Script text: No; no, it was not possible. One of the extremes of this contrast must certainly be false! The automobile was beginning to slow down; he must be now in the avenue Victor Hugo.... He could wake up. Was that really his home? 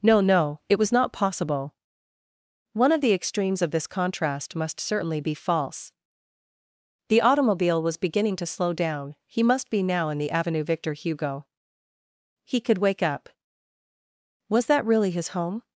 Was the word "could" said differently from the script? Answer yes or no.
no